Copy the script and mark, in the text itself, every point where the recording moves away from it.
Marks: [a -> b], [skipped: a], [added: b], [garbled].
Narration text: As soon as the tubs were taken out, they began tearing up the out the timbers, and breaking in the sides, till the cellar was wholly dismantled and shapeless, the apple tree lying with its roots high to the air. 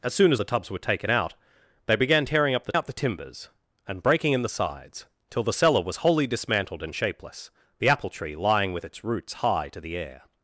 As soon as the tubs were taken out, they began tearing up the out the timbers, and breaking in the sides, till the cellar was wholly dismantled and shapeless, the apple tree lying with its roots high to the air.